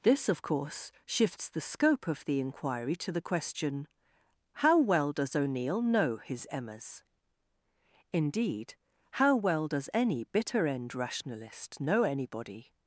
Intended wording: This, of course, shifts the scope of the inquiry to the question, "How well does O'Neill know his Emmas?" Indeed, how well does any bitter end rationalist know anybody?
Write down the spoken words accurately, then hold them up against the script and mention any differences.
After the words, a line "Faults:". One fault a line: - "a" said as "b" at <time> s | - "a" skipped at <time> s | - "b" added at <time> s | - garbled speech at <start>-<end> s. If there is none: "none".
This, of course, shifts the scope of the inquiry to the question, "How well does O'Neill know his Emmas?" Indeed, how well does any bitter end rationalist know anybody?
Faults:
none